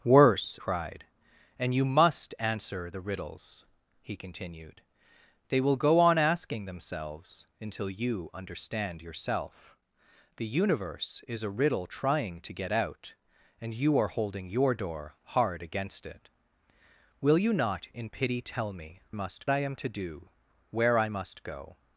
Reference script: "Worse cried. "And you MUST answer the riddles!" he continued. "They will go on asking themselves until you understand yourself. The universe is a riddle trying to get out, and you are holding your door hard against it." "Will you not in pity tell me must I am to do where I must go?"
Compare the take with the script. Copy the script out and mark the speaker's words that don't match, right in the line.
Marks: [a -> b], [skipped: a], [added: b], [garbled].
"Worse cried. "And you MUST answer the riddles!" he continued. "They will go on asking themselves until you understand yourself. The universe is a riddle trying to get out, and you are holding your door hard against it." "Will you not in pity tell me must I am to do where I must go?"